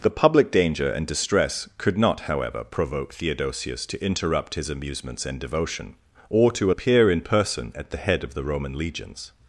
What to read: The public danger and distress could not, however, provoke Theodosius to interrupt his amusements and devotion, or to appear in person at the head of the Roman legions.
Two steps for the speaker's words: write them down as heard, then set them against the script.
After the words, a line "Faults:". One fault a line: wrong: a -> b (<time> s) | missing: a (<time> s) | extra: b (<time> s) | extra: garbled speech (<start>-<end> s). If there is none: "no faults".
The public danger and distress could not, however, provoke Theodosius to interrupt his amusements and devotion, or to appear in person at the head of the Roman legions.
Faults:
no faults